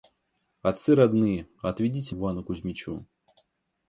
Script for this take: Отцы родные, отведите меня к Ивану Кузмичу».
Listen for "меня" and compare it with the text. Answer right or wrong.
wrong